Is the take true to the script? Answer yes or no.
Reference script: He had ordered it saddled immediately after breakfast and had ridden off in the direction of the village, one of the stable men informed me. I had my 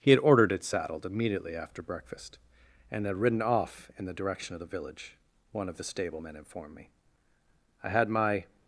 yes